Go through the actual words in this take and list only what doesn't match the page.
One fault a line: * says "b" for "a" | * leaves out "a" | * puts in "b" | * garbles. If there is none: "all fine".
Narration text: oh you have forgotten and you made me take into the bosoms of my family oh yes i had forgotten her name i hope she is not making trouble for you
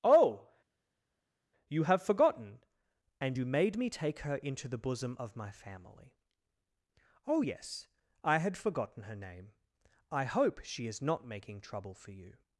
* puts in "her"
* says "bosom" for "bosoms"